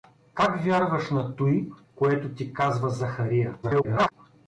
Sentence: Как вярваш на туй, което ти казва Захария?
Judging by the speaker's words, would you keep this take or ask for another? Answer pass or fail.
fail